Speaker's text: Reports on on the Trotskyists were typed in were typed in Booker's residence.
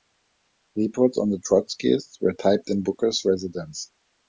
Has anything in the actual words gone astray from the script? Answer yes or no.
yes